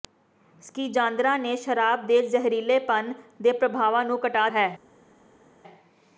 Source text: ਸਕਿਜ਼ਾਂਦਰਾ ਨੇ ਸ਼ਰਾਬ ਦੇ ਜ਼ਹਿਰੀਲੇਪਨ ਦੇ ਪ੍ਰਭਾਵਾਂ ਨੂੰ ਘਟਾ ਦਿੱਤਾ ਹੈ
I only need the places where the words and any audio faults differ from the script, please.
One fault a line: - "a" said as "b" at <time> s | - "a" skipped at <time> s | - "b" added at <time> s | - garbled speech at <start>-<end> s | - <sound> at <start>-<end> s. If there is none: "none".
- "ਦਿੱਤਾ" skipped at 4.5 s